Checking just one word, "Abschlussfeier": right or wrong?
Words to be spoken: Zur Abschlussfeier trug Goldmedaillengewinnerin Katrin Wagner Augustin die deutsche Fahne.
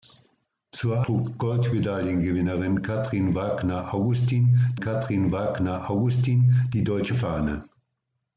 wrong